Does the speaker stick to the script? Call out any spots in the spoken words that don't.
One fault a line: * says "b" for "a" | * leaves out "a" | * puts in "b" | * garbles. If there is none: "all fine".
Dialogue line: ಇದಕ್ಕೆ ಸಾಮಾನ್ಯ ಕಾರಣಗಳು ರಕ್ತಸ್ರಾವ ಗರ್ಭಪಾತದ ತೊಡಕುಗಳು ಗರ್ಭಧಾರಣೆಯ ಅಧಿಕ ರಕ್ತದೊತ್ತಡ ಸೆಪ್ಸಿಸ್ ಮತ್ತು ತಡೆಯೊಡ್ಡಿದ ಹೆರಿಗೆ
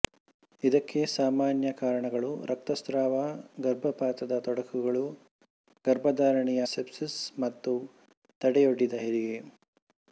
* leaves out "ಅಧಿಕ ರಕ್ತದೊತ್ತಡ"